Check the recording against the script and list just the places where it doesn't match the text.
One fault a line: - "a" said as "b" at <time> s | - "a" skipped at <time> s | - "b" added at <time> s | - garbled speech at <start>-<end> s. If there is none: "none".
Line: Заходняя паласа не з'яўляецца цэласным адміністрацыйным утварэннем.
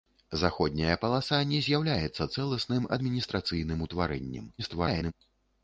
- garbled speech at 4.6-5.1 s